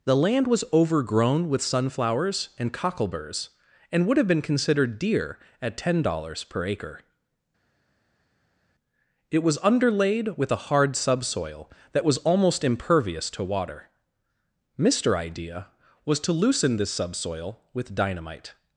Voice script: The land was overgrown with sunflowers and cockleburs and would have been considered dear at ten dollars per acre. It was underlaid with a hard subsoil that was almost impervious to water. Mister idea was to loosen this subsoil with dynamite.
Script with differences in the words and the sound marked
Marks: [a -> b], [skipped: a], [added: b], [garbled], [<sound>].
The land was overgrown with sunflowers and cockleburs and would have been considered dear at ten dollars per acre. It was underlaid with a hard subsoil that was almost impervious to water. Mister idea was to loosen this subsoil with dynamite.